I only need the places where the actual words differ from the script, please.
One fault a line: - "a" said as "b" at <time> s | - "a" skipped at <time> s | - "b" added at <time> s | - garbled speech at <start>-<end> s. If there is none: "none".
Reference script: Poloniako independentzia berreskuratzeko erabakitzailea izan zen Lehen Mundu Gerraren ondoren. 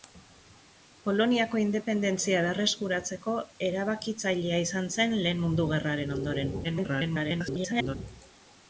- garbled speech at 6.6-8.0 s